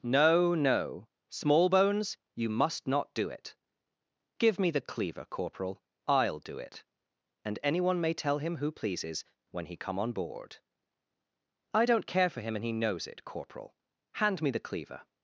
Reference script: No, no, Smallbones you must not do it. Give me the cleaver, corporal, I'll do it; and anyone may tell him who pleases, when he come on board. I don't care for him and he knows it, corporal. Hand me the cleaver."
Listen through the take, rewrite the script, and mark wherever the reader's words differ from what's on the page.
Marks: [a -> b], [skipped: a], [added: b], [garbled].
No, no, Smallbones you must not do it. Give me the cleaver, corporal, I'll do it; and anyone may tell him who pleases, when he come on board. I don't care for him and he knows it, corporal. Hand me the cleaver."